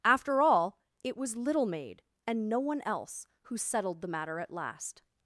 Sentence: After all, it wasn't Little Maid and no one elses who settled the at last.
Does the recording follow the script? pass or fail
fail